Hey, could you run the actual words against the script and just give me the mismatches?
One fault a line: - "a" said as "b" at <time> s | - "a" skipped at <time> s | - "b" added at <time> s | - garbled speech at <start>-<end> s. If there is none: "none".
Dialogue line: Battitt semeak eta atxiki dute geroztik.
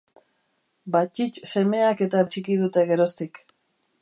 none